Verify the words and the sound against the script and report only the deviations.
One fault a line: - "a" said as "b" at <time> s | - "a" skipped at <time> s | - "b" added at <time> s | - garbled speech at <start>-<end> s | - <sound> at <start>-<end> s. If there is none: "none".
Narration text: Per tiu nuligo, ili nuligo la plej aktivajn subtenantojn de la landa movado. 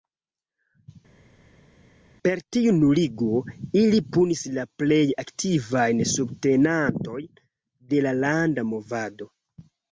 - "nuligo" said as "punis" at 4.2 s